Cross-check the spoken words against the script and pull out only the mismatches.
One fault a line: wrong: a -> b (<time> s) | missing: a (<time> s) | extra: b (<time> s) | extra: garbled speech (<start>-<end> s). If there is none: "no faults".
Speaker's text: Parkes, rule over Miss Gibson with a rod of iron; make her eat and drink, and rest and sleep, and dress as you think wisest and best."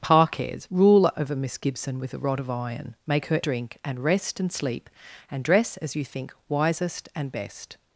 missing: eat and (3.4 s)